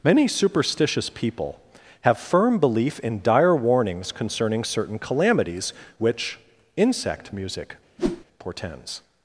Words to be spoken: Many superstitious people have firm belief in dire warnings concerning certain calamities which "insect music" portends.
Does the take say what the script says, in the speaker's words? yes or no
yes